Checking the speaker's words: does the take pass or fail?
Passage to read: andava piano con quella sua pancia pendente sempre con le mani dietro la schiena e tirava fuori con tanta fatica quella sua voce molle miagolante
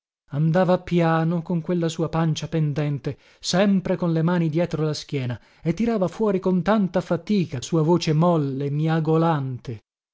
fail